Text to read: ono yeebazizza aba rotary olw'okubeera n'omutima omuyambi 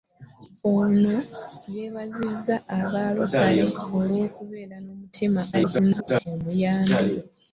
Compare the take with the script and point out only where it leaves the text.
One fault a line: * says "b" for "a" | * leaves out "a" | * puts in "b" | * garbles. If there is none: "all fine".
* garbles